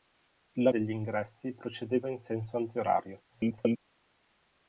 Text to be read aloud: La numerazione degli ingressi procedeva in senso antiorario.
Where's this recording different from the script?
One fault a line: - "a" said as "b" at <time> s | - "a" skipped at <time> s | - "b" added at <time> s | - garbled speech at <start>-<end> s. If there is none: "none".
- "numerazione" skipped at 0.7 s
- garbled speech at 3.3-3.8 s